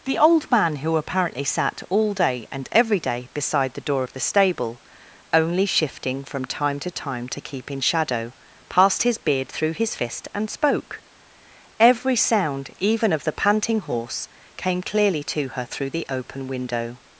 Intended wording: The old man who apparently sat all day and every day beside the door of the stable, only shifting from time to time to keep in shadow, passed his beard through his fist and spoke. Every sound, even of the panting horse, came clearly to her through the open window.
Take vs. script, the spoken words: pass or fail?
pass